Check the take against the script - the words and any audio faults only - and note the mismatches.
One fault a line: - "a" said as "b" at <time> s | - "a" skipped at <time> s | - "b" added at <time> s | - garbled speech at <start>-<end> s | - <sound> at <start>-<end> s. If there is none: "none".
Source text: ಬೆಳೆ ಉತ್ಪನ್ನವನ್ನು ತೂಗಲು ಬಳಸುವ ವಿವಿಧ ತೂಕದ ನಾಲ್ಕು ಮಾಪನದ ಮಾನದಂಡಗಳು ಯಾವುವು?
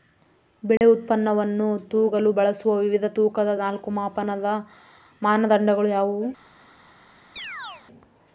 - dropout at 0.8-0.8 s
- chirp at 7.4-7.9 s